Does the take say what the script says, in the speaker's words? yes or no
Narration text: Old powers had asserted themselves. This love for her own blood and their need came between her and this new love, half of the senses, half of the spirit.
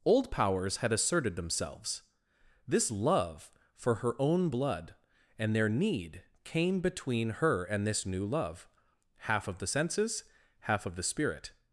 yes